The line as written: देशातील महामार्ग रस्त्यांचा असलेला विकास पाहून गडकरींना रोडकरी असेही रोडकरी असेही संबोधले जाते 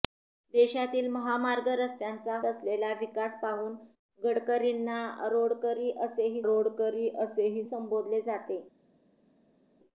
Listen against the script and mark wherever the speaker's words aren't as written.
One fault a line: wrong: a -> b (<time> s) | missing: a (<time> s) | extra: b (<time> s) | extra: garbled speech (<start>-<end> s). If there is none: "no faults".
no faults